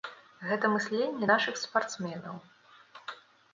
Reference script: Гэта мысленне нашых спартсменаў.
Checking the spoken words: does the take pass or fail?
pass